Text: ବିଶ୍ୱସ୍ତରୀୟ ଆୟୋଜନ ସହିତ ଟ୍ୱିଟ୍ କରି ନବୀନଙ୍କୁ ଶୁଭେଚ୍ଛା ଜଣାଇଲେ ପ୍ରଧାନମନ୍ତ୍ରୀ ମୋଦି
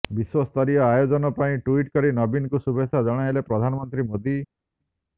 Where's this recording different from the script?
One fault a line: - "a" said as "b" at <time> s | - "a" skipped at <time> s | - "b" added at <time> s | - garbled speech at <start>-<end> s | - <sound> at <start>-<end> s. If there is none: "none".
- "ସହିତ" said as "ପାଇଁ" at 1.4 s